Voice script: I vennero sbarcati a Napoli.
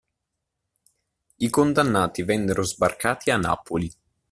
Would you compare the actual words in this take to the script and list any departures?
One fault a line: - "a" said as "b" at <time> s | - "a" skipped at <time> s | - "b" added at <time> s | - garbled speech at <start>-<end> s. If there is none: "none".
- "condannati" added at 1.5 s